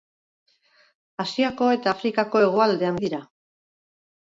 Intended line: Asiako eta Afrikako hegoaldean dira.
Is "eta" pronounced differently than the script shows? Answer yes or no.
no